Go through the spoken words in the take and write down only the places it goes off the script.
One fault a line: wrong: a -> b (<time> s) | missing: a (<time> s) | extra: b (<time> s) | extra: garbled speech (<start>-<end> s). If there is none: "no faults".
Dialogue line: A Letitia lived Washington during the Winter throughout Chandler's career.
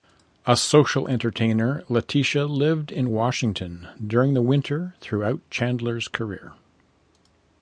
extra: social entertainer (0.6 s)
extra: in (2.9 s)